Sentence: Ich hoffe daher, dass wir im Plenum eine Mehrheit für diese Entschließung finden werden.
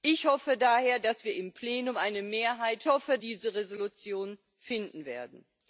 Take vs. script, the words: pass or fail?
fail